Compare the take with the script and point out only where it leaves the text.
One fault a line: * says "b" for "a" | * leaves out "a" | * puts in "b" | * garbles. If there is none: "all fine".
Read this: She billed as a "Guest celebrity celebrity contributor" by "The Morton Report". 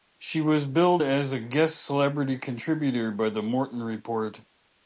* puts in "was"
* leaves out "celebrity"